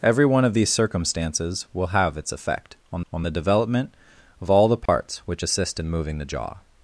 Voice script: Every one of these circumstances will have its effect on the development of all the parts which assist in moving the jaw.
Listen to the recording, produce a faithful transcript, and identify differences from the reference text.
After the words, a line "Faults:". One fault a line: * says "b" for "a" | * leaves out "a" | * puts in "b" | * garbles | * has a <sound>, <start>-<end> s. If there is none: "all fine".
Every one of these circumstances will have its effect on on the development of all the parts which assist in moving the jaw.
Faults:
* puts in "on"
* has a dropout, 4.9-4.9 s